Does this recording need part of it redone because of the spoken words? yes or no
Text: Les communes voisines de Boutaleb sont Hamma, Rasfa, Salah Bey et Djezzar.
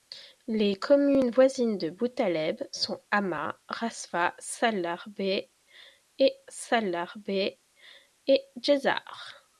yes